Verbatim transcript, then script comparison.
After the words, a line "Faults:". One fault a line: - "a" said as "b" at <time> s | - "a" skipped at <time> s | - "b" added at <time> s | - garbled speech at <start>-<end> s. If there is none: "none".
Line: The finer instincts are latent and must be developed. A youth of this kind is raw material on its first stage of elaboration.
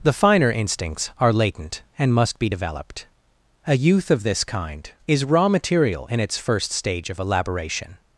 The finer instincts are latent and must be developed. A youth of this kind is raw material in its first stage of elaboration.
Faults:
- "on" said as "in" at 6.1 s